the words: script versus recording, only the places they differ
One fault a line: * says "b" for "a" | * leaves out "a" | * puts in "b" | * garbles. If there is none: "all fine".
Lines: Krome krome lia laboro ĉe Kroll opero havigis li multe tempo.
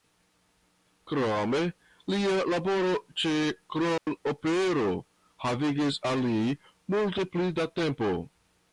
* leaves out "krome"
* puts in "al"
* puts in "pli da"